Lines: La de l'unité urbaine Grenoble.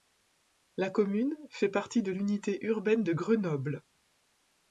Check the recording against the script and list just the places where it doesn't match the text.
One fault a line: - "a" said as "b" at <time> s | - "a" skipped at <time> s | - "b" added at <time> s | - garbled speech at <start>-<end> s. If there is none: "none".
- "commune fait partie" added at 0.9 s
- "de" added at 3.0 s